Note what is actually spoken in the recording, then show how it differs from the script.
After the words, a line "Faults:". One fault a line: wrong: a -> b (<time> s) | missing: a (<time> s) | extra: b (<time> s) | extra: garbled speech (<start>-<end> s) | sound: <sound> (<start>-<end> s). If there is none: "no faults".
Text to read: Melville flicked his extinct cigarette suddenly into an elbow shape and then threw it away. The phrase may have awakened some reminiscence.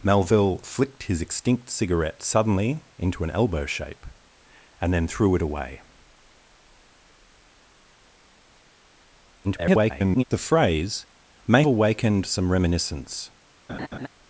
Melville flicked his extinct cigarette suddenly into an elbow shape and then threw it away. [garbled] The phrase may awakened some reminiscence.
Faults:
extra: garbled speech (9.4-10.2 s)
missing: have (11.6 s)
sound: laugh (13.7-14.1 s)